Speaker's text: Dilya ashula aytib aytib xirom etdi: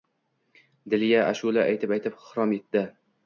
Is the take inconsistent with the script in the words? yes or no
no